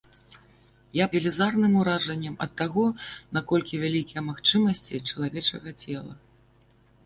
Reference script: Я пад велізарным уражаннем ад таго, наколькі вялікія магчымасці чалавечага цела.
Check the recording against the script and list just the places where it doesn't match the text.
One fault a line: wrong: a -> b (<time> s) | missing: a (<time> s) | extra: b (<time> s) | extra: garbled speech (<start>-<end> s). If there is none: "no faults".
missing: пад (1.1 s)